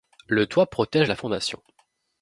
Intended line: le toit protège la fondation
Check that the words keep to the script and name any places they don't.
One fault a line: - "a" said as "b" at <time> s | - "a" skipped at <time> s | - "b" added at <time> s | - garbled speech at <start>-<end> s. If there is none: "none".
none